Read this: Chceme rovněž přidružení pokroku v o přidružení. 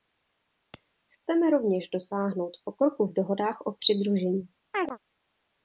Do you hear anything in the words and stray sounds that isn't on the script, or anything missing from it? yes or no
yes